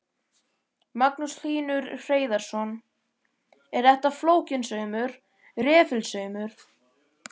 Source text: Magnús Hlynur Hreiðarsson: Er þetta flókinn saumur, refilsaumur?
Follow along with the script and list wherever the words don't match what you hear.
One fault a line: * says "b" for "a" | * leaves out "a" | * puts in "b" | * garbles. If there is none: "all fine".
all fine